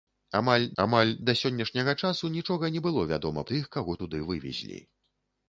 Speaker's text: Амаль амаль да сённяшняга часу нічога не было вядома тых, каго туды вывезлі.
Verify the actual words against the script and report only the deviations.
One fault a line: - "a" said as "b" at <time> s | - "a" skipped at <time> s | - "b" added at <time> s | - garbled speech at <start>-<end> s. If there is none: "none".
none